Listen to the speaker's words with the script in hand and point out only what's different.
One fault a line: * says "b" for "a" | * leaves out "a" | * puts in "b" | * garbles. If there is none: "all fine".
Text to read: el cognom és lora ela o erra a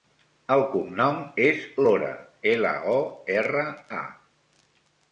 all fine